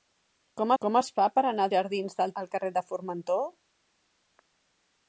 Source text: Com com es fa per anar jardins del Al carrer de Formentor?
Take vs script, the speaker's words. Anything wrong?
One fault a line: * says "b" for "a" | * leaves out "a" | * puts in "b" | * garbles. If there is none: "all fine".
all fine